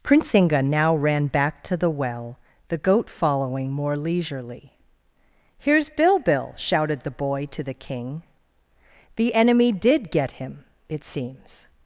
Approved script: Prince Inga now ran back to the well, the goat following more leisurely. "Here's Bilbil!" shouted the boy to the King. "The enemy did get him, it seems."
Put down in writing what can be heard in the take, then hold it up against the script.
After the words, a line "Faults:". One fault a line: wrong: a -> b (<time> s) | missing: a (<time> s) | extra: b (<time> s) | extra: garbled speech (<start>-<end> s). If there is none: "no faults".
Prince Inga now ran back to the well, the goat following more leisurely. "Here's Bilbil!" shouted the boy to the King. "The enemy did get him, it seems."
Faults:
no faults